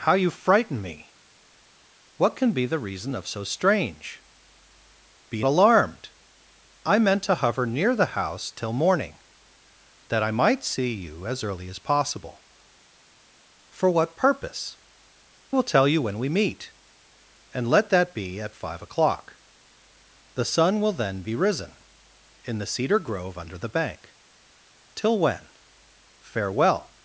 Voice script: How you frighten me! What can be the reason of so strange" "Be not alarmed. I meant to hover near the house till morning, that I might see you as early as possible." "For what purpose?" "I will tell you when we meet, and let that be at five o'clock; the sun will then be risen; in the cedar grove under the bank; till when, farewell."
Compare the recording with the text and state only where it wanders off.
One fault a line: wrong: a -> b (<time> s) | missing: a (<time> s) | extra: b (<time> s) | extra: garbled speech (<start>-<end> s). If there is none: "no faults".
missing: not (5.5 s)
missing: I (14.8 s)